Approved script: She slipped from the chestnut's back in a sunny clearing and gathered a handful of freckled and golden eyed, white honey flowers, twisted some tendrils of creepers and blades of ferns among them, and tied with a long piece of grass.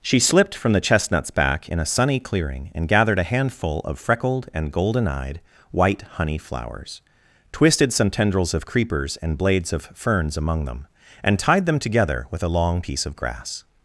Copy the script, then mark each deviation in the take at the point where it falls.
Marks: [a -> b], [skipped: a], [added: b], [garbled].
She slipped from the chestnut's back in a sunny clearing and gathered a handful of freckled and golden eyed, white honey flowers, twisted some tendrils of creepers and blades of ferns among them, and tied [added: them together] with a long piece of grass.